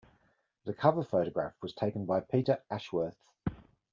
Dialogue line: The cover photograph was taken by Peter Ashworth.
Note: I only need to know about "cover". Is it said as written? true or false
true